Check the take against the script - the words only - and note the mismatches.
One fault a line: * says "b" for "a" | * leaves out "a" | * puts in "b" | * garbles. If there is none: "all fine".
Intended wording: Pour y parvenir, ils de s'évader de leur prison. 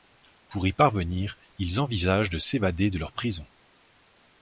* puts in "envisagent"